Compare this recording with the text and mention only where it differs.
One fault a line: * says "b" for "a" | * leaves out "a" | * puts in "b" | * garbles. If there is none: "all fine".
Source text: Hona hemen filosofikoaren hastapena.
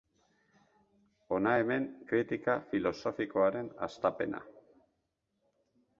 * puts in "kritika"